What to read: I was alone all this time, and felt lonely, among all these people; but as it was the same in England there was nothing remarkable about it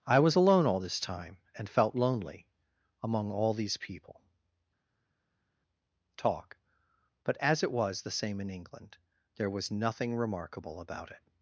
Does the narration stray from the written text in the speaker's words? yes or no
yes